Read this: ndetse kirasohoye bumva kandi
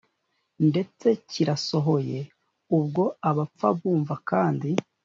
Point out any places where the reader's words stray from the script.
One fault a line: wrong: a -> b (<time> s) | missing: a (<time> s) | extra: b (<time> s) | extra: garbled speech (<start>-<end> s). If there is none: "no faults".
extra: ubwo abapfa (2.8 s)